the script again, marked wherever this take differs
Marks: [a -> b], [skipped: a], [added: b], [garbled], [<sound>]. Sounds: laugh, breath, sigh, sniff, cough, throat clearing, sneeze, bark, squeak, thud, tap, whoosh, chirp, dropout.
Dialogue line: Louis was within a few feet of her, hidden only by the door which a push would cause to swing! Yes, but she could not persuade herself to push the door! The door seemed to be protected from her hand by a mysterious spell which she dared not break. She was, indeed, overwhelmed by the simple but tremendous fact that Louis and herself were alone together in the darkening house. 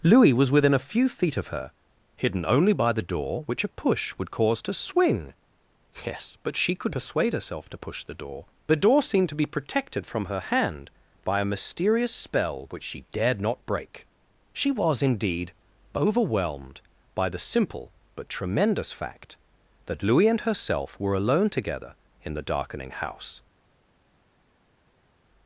Louis was within a few feet of her, hidden only by the door which a push would cause to swing! Yes, but she could [skipped: not] persuade herself to push the door! The door seemed to be protected from her hand by a mysterious spell which she dared not break. She was, indeed, overwhelmed by the simple but tremendous fact that Louis and herself were alone together in the darkening house.